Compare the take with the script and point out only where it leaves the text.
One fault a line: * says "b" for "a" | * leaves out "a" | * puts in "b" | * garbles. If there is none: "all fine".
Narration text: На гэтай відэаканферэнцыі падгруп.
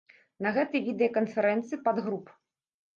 all fine